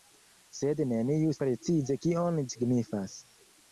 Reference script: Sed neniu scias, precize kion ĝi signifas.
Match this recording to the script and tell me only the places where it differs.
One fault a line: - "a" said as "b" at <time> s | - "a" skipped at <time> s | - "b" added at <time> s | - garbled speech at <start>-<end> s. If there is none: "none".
- "scias" skipped at 1.4 s
- "ĝi" skipped at 2.4 s